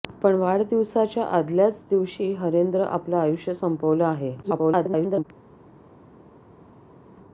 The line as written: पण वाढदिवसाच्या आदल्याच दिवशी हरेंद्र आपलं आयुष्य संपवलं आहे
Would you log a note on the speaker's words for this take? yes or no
yes